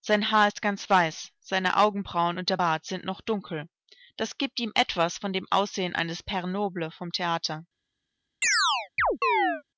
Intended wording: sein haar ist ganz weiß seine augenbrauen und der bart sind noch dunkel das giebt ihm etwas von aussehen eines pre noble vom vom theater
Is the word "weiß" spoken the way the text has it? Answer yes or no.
yes